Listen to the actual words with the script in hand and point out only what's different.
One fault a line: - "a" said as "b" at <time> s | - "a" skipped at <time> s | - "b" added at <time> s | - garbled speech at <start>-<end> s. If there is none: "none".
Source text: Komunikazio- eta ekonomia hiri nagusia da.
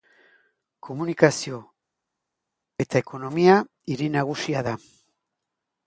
none